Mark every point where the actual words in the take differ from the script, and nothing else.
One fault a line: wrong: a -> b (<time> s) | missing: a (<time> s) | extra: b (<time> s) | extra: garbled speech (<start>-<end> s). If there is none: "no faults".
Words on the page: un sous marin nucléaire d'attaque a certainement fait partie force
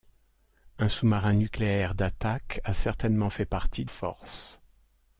no faults